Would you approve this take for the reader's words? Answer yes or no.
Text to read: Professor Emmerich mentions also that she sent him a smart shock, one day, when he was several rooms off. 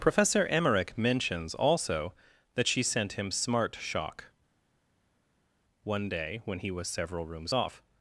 no